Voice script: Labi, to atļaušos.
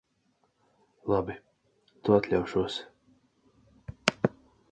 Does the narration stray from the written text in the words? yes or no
no